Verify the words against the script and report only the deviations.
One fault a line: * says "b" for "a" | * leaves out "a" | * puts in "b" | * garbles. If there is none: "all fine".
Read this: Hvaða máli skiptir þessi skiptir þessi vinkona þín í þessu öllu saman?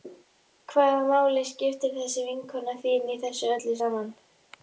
* leaves out "skiptir þessi"